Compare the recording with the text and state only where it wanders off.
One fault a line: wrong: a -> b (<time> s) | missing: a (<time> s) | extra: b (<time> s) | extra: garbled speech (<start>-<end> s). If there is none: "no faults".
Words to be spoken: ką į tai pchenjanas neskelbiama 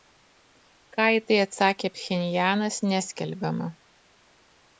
extra: atsakė (1.4 s)